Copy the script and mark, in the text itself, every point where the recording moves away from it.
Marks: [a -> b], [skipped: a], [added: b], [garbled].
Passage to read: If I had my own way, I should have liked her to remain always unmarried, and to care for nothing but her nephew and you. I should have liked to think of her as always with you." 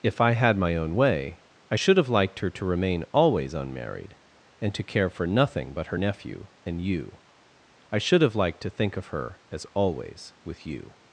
If I had my own way, I should have liked her to remain always unmarried, and to care for nothing but her nephew and you. I should have liked to think of her as always with you."